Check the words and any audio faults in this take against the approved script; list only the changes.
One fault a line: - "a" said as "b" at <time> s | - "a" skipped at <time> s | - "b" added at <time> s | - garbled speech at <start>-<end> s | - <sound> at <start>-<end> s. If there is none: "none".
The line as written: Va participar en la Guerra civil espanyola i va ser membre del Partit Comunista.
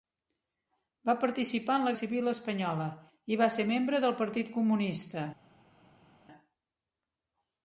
- "Guerra" skipped at 1.9 s